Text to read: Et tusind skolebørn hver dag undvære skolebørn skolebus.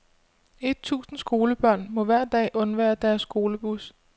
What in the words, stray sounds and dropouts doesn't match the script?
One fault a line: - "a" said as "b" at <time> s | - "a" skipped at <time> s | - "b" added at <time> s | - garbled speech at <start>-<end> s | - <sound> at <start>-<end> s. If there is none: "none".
- "må" added at 1.9 s
- "skolebørn" said as "deres" at 3.0 s